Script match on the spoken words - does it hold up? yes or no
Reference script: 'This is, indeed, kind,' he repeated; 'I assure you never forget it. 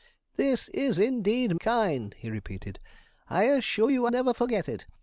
yes